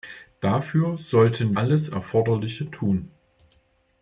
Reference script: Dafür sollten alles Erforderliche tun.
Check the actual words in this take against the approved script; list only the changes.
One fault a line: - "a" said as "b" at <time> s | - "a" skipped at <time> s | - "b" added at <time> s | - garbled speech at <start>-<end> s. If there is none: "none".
none